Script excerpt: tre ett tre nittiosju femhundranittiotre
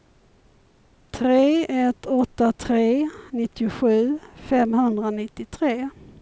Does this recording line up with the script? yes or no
no